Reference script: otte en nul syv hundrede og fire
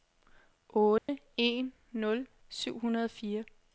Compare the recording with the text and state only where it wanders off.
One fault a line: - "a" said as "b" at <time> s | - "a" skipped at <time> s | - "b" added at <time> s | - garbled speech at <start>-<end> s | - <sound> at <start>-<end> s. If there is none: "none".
- dropout at 1.0-1.1 s